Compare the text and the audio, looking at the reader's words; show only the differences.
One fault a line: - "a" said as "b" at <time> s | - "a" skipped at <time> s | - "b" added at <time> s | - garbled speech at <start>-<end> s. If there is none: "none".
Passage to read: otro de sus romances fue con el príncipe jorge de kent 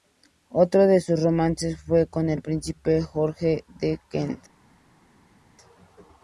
none